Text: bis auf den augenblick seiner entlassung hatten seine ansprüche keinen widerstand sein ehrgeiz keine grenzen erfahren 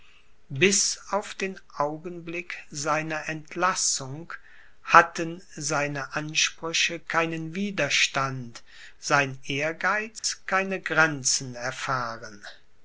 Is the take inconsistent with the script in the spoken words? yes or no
no